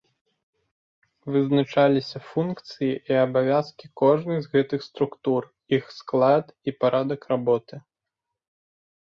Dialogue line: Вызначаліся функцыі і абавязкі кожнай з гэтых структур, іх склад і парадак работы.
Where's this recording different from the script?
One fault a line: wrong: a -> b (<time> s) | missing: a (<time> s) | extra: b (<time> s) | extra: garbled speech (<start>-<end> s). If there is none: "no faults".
no faults